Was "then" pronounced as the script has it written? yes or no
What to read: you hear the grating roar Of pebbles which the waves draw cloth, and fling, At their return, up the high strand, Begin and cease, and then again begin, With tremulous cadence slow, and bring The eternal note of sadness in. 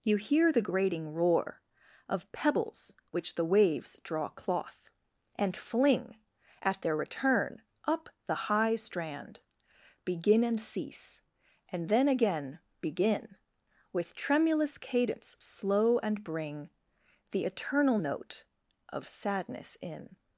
yes